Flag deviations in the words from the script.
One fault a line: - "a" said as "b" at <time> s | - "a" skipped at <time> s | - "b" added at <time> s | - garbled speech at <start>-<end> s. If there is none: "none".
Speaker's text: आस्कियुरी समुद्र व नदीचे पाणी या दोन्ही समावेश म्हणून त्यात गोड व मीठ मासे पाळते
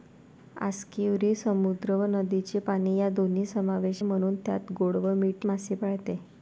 none